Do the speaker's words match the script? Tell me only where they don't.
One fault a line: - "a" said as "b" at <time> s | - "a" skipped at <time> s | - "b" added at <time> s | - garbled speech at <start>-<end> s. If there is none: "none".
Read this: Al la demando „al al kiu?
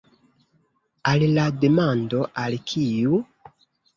- "al" skipped at 2.6 s